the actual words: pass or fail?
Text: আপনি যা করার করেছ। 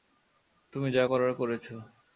fail